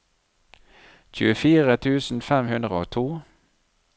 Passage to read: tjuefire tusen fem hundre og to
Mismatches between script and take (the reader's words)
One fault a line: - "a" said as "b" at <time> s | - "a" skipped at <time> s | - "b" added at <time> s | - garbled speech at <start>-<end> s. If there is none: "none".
none